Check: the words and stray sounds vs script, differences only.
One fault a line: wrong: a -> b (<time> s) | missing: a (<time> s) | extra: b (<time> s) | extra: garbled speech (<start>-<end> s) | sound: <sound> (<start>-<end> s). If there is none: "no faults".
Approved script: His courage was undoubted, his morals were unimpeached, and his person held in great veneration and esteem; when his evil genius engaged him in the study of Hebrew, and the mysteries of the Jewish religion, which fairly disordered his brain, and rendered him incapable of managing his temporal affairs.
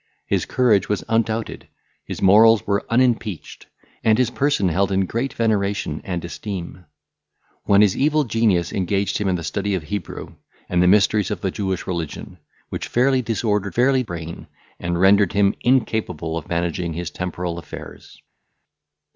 wrong: his -> fairly (13.7 s)